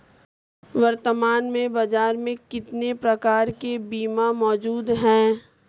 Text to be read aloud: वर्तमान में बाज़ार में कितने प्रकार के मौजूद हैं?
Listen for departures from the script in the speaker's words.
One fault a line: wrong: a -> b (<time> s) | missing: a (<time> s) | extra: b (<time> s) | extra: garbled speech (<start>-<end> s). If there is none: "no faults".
extra: बीमा (3.8 s)